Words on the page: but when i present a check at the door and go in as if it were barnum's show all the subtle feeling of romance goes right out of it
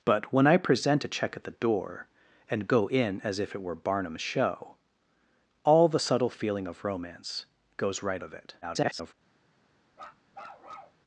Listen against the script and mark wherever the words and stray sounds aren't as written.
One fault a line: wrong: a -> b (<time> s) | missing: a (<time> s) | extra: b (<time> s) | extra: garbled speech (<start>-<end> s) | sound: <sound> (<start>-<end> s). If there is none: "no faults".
missing: out (8.2 s)
extra: garbled speech (8.6-9.1 s)
sound: bark (9.9-11.0 s)